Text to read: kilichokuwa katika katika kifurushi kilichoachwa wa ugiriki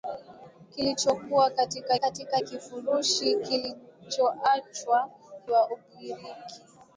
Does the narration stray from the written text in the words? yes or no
no